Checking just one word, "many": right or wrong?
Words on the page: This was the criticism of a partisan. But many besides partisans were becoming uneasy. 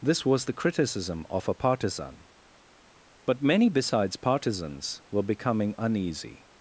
right